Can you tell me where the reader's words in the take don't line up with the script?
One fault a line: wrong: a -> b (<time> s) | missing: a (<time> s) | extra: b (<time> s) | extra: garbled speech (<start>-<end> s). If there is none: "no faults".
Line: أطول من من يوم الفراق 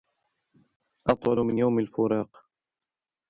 missing: من (1.6 s)